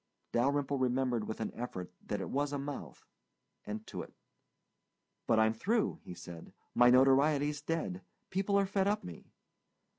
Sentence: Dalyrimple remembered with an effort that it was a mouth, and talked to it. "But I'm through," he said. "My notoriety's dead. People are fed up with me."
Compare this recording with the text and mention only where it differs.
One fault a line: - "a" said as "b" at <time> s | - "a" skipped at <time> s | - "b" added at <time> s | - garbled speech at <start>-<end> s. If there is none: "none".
- "talked" skipped at 3.9 s
- "with" skipped at 9.0 s